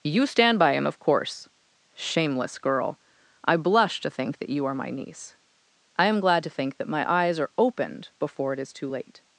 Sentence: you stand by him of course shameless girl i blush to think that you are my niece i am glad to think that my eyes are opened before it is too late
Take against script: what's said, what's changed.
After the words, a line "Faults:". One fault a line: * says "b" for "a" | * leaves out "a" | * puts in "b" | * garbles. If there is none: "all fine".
you stand by him of course shameless girl i blush to think that you are my niece i am glad to think that my eyes are opened before it is too late
Faults:
all fine